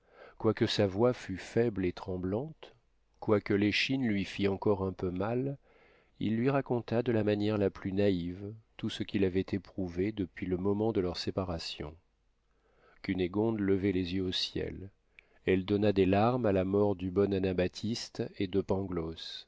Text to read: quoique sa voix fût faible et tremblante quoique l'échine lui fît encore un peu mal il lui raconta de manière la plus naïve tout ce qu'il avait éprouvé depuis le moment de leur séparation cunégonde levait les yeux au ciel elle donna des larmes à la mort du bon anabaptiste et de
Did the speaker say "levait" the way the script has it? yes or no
yes